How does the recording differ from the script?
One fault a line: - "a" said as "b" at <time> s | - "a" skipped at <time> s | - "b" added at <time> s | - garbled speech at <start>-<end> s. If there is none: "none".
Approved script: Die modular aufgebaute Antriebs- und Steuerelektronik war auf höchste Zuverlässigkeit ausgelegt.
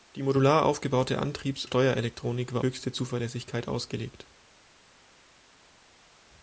- "und" skipped at 1.6 s
- "auf" skipped at 2.6 s